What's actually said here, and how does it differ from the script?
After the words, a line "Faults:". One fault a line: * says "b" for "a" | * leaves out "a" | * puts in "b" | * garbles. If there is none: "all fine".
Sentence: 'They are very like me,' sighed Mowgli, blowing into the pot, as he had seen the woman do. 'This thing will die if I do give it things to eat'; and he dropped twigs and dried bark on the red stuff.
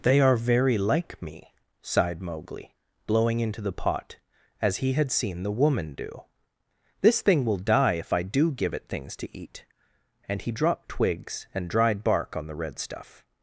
'They are very like me,' sighed Mowgli, blowing into the pot, as he had seen the woman do. 'This thing will die if I do give it things to eat'; and he dropped twigs and dried bark on the red stuff.
Faults:
all fine